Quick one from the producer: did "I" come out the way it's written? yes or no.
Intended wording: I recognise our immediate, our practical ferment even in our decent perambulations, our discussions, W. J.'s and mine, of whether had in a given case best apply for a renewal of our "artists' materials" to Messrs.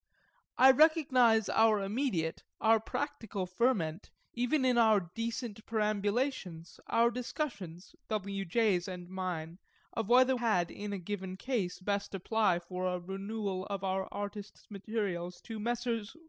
yes